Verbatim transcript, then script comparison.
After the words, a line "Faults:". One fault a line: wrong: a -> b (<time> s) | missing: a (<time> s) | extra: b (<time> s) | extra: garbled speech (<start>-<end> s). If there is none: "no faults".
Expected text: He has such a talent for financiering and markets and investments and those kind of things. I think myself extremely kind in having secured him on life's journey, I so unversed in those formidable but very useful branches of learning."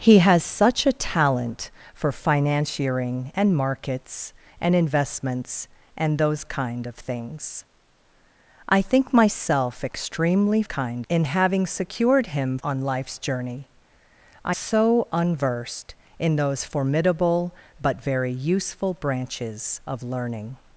He has such a talent for financiering and markets and investments and those kind of things. I think myself extremely kind in having secured him on life's journey, I so unversed in those formidable but very useful branches of learning."
Faults:
no faults